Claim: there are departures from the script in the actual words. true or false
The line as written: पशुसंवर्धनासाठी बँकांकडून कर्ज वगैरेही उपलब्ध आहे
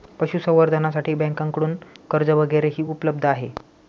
false